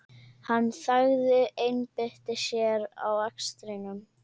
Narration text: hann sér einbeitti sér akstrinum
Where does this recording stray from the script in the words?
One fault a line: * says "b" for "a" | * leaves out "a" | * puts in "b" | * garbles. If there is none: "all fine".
* says "þagði" for "sér"
* puts in "að"